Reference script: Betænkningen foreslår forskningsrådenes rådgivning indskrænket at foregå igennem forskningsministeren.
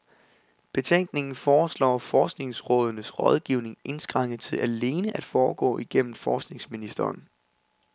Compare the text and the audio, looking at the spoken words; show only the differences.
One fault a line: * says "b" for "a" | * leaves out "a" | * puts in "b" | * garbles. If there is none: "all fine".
* puts in "til alene"